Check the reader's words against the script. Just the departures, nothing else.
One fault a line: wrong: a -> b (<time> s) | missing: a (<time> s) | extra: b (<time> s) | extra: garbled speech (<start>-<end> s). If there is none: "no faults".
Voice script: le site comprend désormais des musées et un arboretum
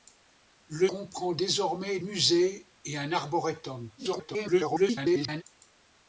missing: site (0.9 s)
missing: des (2.0 s)
extra: garbled speech (4.0-5.4 s)